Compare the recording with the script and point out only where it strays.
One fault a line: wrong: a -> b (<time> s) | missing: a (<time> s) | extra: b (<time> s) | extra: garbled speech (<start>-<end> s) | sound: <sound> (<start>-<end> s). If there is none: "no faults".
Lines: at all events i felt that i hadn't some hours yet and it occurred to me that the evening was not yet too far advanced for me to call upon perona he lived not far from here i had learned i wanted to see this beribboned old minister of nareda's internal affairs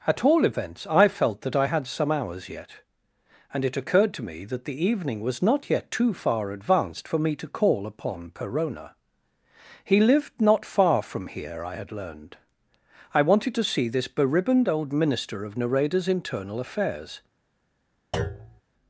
wrong: hadn't -> had (1.6 s)
sound: thud (18.1-18.6 s)